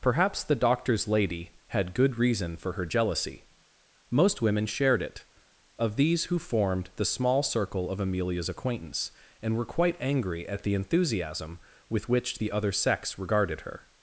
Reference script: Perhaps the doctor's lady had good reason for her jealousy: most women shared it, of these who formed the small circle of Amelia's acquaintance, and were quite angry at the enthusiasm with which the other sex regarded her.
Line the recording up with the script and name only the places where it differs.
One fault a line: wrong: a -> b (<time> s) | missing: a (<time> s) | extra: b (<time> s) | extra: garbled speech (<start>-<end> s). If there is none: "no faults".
no faults